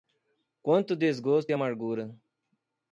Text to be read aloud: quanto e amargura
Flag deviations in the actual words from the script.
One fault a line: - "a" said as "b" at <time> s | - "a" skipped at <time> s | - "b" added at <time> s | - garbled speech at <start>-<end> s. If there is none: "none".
- "desgosto" added at 0.9 s